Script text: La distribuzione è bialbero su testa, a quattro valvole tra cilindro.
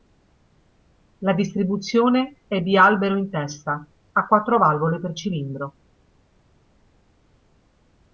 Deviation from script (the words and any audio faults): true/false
true